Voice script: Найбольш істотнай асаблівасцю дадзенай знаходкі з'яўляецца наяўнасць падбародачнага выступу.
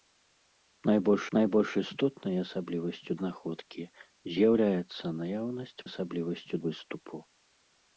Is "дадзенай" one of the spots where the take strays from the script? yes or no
yes